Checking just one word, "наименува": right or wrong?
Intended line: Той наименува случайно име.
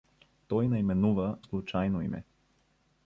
right